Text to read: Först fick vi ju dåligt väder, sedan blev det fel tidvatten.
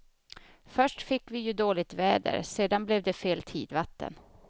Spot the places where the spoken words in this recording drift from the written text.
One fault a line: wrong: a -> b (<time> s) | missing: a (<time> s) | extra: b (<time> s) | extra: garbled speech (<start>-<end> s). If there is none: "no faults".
no faults